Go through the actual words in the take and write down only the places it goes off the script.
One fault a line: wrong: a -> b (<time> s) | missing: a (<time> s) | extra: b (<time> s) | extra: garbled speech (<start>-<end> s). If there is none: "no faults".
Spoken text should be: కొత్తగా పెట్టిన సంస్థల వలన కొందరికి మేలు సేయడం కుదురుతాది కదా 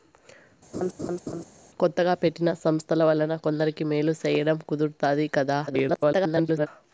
extra: garbled speech (5.7-6.7 s)